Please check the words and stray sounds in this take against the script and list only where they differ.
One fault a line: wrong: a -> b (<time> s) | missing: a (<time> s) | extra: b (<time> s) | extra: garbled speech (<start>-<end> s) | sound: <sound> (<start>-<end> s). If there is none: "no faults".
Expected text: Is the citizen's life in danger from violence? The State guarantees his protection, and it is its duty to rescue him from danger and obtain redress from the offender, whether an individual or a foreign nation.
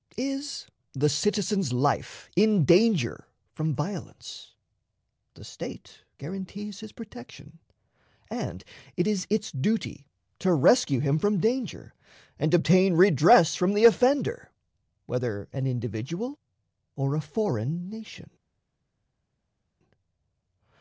no faults